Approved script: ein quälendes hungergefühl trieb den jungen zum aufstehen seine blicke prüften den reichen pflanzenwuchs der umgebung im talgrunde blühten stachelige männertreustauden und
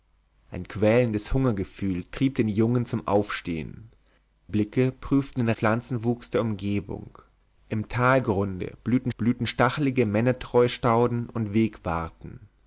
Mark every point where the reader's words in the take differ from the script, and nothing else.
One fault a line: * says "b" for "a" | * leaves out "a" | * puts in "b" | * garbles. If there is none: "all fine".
* leaves out "seine"
* leaves out "reichen"
* puts in "blühten"